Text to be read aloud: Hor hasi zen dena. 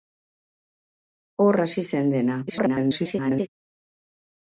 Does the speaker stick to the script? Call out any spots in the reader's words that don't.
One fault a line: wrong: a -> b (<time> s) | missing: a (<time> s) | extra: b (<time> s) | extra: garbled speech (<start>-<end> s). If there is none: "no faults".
extra: garbled speech (2.5-3.5 s)